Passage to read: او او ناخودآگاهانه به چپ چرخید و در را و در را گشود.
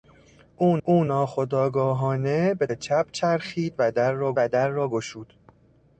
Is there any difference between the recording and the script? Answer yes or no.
no